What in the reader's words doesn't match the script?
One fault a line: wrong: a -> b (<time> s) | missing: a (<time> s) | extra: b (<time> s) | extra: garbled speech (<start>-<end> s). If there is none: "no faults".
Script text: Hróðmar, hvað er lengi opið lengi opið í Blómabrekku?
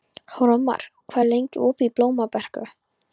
missing: lengi opið (1.9 s)